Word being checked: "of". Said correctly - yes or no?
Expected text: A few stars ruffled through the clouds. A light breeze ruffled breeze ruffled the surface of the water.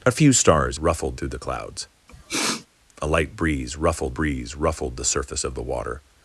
yes